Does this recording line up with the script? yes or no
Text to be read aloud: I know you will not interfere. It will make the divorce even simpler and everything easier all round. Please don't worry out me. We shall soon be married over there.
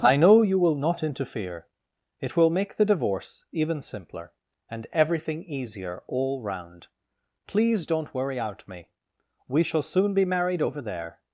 yes